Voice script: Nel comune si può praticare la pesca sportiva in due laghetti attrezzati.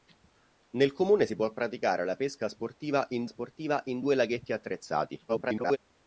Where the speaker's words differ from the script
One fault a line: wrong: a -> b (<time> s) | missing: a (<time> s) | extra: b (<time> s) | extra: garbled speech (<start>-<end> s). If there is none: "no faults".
extra: sportiva in (3.3 s)
extra: garbled speech (5.3-5.8 s)